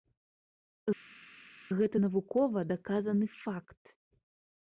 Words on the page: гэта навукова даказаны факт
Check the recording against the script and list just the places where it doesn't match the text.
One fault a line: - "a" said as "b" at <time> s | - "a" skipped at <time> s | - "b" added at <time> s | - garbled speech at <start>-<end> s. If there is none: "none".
none